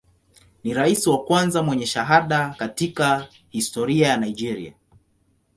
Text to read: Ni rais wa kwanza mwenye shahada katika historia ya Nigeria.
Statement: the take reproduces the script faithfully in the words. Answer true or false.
true